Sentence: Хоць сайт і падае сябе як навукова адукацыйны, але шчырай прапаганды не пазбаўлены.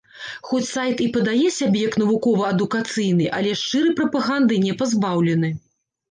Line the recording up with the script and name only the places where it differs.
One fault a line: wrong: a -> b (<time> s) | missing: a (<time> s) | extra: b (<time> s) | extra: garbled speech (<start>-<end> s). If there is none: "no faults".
no faults